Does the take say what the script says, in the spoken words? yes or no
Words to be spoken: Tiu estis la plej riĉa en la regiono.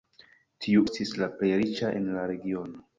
yes